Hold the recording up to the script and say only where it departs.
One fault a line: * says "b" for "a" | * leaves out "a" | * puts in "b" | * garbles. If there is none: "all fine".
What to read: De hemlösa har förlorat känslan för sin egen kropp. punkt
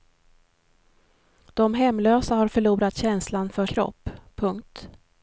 * leaves out "sin egen"